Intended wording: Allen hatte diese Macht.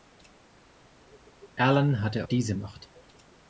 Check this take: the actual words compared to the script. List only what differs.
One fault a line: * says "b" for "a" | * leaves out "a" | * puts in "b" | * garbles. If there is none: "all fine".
all fine